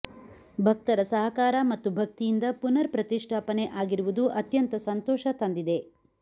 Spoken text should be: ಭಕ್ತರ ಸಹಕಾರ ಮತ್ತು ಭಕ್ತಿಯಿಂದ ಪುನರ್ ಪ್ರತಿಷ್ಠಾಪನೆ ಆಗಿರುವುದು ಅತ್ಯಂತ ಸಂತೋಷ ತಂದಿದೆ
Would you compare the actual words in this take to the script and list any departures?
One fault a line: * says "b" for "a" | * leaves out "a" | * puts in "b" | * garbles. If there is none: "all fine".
all fine